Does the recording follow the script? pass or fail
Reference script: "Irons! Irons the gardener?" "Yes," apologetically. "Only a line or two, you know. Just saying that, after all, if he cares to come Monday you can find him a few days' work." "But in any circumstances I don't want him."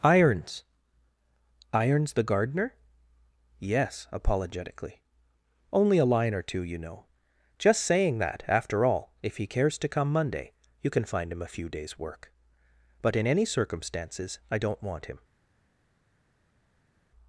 pass